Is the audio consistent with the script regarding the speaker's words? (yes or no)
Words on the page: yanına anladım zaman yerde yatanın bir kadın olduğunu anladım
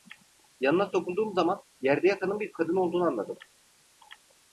no